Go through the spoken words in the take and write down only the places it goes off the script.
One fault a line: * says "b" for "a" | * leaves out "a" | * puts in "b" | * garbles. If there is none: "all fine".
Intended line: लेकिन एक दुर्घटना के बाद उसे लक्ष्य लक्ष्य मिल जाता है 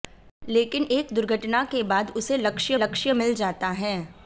all fine